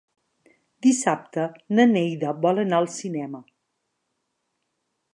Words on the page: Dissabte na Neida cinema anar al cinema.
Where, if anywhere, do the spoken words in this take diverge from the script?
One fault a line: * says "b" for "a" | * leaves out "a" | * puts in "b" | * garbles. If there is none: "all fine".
* says "vol" for "cinema"